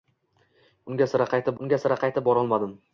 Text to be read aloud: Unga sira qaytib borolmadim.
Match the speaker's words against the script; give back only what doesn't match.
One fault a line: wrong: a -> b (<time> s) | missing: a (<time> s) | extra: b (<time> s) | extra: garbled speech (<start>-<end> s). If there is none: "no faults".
extra: unga sira qaytib (1.6 s)